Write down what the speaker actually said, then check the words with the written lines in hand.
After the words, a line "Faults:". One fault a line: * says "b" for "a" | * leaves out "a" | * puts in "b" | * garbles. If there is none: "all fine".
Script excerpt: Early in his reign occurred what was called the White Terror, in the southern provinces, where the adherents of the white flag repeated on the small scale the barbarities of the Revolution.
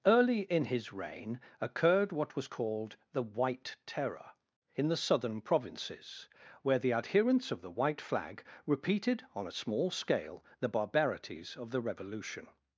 Early in his reign occurred what was called the White Terror, in the southern provinces, where the adherents of the white flag repeated on a small scale the barbarities of the Revolution.
Faults:
* says "a" for "the"